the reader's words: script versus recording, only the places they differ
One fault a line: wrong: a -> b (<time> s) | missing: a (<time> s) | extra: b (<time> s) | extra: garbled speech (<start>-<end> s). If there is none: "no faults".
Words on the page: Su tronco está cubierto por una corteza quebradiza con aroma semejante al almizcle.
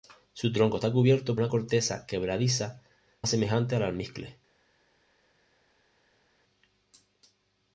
missing: por (1.4 s)
missing: con aroma (2.8 s)